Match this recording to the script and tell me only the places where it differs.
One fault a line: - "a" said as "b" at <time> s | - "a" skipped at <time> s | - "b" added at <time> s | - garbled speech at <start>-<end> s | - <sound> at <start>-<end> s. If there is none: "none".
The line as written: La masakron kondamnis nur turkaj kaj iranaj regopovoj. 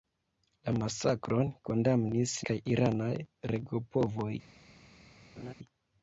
- "nur turkaj" skipped at 2.3 s
- laugh at 5.4-5.5 s